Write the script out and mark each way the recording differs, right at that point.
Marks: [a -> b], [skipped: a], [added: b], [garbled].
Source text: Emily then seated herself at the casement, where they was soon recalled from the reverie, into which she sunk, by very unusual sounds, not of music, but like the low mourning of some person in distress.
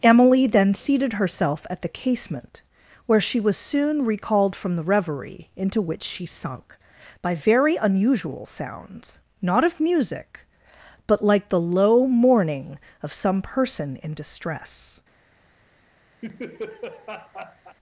Emily then seated herself at the casement, where [they -> she] was soon recalled from the reverie, into which she sunk, by very unusual sounds, not of music, but like the low mourning of some person in distress.